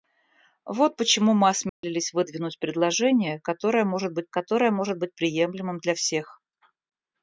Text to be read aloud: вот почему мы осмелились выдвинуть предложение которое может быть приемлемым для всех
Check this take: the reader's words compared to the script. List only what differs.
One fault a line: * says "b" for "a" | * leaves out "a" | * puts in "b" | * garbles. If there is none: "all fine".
* puts in "которое может быть"